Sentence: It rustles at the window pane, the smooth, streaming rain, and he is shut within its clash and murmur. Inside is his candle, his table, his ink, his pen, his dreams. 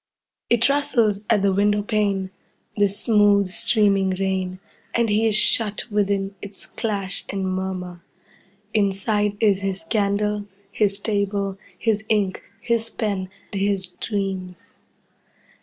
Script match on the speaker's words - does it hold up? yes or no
yes